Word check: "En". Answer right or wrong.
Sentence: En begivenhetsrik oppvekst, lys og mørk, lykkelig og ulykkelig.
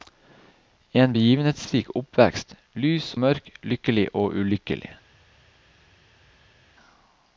right